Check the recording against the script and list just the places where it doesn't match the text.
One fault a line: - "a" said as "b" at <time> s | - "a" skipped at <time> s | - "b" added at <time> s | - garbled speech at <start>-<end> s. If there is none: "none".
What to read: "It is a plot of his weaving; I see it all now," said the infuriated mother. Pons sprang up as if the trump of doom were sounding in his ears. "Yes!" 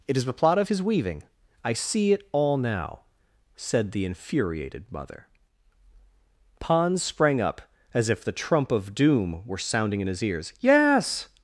- "a" said as "the" at 0.2 s